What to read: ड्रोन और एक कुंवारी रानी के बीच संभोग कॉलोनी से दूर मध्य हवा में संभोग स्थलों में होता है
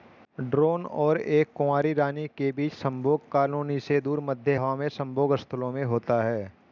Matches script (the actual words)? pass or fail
pass